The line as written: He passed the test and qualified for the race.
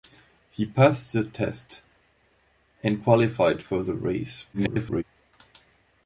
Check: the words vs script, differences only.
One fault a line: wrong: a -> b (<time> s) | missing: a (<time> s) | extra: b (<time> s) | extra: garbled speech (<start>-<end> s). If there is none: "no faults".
extra: garbled speech (4.5-5.0 s)